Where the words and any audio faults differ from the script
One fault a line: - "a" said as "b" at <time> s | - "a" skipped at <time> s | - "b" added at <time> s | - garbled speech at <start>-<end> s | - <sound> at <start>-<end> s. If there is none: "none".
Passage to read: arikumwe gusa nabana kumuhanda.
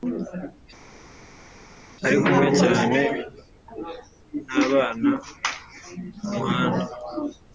- "gusa" said as "cyane" at 2.6 s